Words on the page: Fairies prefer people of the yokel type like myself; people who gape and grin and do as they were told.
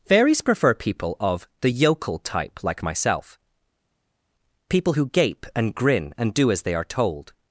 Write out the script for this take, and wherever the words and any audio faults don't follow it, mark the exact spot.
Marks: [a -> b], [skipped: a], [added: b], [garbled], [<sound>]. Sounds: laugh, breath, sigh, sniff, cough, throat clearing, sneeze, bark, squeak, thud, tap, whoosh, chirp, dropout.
Fairies prefer people of the yokel type like myself; people who gape and grin and do as they [were -> are] told.